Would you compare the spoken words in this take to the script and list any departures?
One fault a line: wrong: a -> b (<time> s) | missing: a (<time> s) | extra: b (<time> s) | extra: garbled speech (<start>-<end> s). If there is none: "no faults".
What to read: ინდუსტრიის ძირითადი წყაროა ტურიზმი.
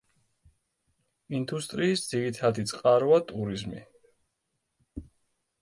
no faults